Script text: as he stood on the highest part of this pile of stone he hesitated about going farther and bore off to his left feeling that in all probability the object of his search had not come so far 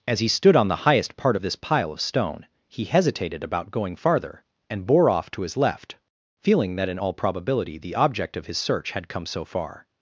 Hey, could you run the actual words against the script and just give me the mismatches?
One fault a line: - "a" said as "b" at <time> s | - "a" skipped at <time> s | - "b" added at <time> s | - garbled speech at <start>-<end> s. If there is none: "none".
- "not" skipped at 9.1 s